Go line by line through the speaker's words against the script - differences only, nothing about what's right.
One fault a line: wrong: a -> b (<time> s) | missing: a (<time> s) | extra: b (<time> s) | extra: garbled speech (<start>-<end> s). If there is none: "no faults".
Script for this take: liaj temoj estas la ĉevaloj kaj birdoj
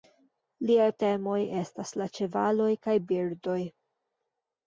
no faults